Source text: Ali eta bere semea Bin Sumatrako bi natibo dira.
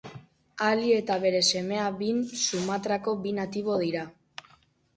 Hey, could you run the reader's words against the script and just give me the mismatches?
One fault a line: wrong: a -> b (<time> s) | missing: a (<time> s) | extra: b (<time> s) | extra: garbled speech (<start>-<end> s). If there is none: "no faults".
no faults